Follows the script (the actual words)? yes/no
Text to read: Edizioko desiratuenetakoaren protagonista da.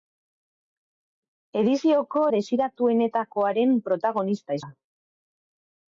yes